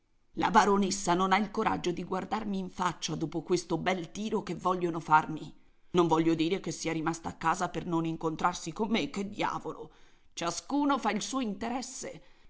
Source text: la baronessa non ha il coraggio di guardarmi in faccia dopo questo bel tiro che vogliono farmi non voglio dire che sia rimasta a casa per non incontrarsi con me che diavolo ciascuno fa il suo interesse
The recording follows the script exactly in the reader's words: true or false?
true